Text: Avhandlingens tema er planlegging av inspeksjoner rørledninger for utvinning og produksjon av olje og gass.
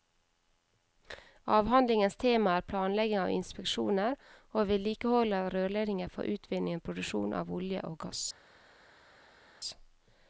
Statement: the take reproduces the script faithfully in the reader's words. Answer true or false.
false